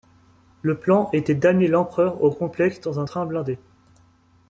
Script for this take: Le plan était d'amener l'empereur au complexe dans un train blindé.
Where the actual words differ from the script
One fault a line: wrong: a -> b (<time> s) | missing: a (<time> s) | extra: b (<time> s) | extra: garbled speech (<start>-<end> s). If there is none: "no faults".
no faults